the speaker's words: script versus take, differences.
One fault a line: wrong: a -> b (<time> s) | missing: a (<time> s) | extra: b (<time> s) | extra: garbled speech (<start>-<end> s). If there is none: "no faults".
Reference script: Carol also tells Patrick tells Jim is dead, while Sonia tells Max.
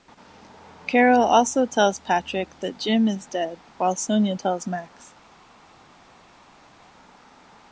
wrong: tells -> that (2.6 s)